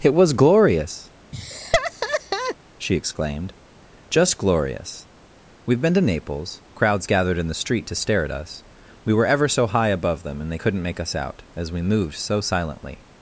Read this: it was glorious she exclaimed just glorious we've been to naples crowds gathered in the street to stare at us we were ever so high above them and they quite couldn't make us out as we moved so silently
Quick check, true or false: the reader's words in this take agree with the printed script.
false